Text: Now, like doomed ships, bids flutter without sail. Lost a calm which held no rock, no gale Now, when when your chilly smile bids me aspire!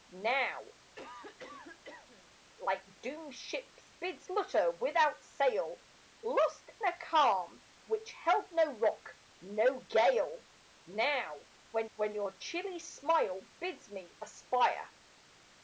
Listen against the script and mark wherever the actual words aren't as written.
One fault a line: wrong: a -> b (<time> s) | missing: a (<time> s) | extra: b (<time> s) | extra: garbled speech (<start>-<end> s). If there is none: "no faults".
no faults